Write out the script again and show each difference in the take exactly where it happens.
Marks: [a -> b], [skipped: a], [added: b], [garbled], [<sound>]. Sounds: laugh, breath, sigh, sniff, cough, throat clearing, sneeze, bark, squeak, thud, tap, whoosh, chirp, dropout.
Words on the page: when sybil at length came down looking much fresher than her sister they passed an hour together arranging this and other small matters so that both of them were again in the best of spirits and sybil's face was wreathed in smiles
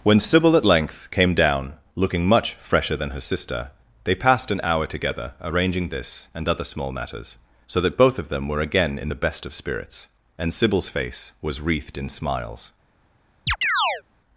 when sybil at length came down looking much fresher than her sister they passed an hour together arranging this and other small matters so that both of them were again in the best of spirits and sybil's face was wreathed in smiles [chirp]